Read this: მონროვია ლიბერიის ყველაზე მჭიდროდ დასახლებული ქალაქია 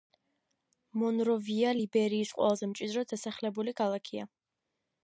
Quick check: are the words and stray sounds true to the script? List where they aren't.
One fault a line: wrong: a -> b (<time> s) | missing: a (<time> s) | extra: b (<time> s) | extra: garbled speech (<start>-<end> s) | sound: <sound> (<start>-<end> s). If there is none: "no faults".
no faults